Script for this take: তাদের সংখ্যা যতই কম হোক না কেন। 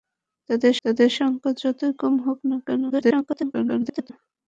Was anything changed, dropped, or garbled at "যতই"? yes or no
no